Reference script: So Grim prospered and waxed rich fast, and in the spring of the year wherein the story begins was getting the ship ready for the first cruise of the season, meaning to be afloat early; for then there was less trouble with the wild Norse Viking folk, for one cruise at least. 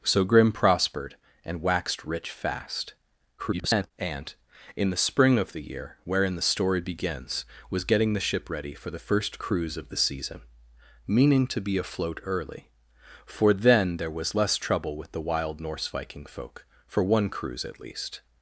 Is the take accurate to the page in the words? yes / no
no